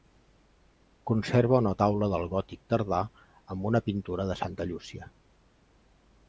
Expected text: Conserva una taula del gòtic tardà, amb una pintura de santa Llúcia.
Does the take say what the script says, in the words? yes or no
yes